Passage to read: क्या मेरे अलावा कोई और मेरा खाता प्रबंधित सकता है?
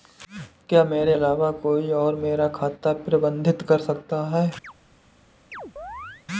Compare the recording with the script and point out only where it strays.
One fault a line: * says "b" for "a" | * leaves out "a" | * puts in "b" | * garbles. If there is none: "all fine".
* puts in "कर"